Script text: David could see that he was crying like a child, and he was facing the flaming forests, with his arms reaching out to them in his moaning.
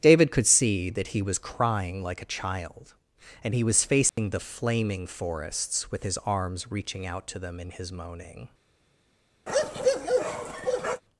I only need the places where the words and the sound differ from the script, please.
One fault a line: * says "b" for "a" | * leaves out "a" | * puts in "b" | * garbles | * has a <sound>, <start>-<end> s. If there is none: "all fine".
* has a dropout, 4.1-4.2 s
* has a bark, 9.5-11.0 s